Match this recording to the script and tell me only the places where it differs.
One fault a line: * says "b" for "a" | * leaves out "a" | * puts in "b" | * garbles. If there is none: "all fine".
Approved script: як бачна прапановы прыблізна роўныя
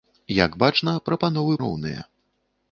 * leaves out "прыблізна"